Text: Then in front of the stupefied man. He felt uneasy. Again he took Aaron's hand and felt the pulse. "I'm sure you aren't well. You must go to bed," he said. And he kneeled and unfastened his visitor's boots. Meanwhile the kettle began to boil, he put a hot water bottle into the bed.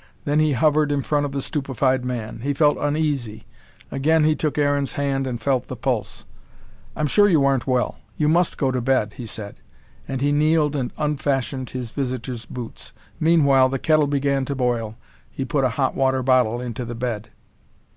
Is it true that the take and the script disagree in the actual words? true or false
true